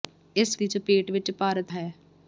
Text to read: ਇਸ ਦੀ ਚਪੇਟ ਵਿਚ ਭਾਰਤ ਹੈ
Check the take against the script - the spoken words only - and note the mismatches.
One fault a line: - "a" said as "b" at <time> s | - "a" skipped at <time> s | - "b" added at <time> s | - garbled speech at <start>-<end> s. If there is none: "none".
none